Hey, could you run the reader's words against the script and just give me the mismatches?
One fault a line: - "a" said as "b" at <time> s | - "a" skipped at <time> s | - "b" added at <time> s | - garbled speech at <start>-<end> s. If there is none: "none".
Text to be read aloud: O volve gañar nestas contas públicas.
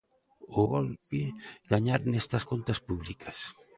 none